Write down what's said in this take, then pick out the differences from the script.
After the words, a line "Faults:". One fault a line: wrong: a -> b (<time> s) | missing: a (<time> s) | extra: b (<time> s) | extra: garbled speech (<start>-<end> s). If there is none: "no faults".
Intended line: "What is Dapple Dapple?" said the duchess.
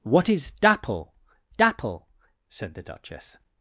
"What is Dapple Dapple?" said the duchess.
Faults:
no faults